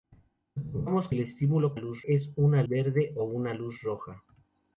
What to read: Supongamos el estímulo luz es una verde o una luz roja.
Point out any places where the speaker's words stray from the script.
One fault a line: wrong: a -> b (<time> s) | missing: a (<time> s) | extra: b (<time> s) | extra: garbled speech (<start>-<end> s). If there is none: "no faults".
no faults